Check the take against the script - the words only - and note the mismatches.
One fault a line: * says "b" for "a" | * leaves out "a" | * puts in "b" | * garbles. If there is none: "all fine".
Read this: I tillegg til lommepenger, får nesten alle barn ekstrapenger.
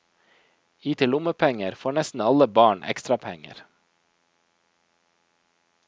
* leaves out "tillegg"